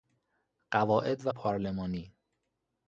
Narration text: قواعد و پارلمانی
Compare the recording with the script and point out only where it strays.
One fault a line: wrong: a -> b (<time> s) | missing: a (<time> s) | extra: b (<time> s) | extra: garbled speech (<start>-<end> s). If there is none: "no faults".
no faults